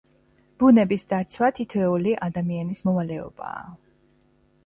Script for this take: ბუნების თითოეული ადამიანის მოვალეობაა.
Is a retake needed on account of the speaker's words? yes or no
yes